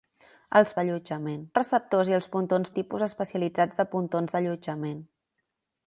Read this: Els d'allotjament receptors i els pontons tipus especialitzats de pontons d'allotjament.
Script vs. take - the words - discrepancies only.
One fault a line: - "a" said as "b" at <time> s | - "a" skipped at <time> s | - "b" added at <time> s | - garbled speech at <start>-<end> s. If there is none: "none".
none